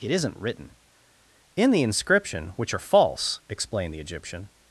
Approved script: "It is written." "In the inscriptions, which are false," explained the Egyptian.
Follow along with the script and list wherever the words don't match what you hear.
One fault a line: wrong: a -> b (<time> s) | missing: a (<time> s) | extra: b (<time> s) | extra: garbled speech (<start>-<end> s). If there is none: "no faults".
wrong: is -> isn't (0.1 s)
wrong: inscriptions -> inscription (1.8 s)